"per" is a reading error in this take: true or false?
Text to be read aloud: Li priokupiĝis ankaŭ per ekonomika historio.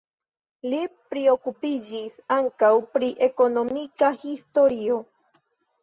true